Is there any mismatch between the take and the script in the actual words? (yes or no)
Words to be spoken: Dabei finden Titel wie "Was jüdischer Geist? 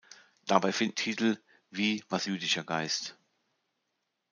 no